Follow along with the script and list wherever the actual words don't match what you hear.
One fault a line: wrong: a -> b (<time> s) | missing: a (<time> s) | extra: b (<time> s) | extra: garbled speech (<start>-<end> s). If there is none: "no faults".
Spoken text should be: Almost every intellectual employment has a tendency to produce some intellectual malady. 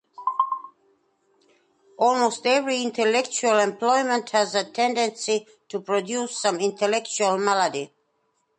no faults